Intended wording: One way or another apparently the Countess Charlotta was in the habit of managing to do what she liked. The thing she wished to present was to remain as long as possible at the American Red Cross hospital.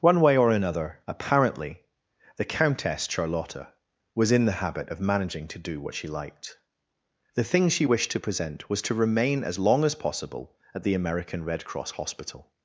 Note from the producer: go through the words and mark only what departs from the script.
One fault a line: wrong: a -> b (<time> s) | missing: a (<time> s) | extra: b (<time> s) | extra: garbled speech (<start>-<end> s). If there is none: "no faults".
no faults